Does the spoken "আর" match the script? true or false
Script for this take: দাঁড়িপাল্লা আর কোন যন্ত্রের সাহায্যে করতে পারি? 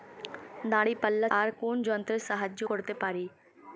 true